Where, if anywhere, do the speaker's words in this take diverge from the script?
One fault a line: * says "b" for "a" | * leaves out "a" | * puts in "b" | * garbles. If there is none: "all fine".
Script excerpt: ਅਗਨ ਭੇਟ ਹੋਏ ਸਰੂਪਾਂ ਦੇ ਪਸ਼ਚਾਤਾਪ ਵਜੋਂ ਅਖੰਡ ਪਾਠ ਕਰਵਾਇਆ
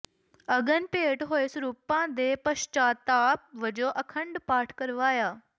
all fine